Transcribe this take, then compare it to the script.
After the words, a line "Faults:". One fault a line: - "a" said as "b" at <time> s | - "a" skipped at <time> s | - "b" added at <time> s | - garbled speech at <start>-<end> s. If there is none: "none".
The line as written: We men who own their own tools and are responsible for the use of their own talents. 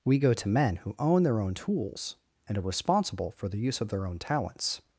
We go to men who own their own tools and are responsible for the use of their own talents.
Faults:
- "go to" added at 0.2 s